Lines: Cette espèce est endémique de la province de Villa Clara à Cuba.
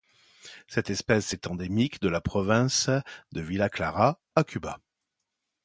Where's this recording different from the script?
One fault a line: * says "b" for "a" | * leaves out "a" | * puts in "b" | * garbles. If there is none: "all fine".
all fine